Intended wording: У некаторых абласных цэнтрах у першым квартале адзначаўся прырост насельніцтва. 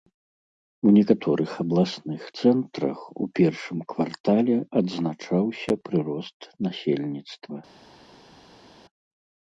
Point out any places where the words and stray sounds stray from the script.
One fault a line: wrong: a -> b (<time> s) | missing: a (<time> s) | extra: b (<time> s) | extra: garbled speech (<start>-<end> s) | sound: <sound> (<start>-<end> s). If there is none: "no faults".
no faults